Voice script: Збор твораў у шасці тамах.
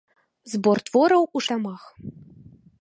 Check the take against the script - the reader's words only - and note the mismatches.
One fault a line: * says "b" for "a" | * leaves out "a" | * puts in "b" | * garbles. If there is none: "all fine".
* leaves out "шасці"